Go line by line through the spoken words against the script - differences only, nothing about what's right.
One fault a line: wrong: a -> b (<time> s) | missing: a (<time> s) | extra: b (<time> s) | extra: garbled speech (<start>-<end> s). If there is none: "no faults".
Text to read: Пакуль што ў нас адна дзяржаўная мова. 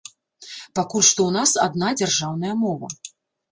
no faults